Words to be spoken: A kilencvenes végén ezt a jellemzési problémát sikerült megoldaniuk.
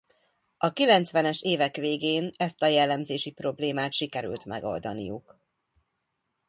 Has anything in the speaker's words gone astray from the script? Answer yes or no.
yes